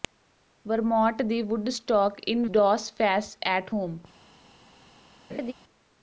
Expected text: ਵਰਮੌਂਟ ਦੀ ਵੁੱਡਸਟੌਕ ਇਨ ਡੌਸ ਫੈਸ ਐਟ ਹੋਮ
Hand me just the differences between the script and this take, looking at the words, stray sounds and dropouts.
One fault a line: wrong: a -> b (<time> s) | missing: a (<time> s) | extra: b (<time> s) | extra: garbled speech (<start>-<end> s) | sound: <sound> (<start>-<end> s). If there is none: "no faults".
sound: laugh (5.3-5.5 s)